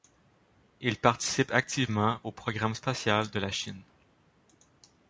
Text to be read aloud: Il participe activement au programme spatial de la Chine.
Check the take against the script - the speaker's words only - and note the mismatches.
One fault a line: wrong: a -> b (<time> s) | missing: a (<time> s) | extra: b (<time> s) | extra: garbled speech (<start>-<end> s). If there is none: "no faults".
no faults